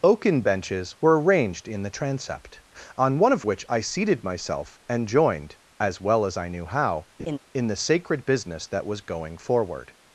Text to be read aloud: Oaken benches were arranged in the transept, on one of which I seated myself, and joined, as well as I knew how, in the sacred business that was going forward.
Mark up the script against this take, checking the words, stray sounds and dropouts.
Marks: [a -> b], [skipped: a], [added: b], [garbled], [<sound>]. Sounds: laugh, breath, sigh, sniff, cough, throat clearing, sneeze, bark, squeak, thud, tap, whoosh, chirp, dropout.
Oaken benches were arranged in the transept, on one of which I seated myself, and joined, as well as I knew how, [laugh] in the sacred business that was going forward.